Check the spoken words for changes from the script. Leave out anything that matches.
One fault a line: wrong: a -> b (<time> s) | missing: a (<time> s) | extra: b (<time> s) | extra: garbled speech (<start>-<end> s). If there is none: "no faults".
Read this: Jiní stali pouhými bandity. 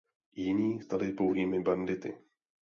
no faults